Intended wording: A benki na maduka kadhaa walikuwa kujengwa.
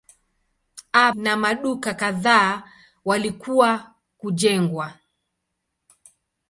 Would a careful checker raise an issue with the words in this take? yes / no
yes